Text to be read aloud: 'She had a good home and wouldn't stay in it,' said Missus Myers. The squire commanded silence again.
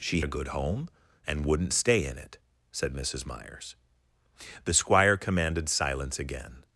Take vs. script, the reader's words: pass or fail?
fail